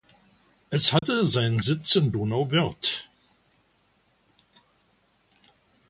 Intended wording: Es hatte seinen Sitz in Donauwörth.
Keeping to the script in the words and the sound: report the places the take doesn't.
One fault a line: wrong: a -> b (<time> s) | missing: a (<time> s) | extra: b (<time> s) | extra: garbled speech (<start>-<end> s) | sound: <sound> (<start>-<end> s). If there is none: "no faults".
sound: dropout (1.0-1.0 s)